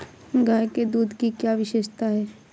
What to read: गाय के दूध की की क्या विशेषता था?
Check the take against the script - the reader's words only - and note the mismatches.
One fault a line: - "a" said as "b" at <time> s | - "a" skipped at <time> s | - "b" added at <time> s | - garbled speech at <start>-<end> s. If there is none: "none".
- "की" skipped at 1.3 s
- "था" said as "है" at 2.1 s